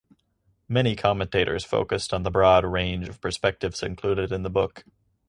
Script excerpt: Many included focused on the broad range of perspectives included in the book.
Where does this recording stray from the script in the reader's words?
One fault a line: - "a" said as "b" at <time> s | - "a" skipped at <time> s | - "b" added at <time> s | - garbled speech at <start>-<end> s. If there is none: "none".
- "included" said as "commentators" at 0.9 s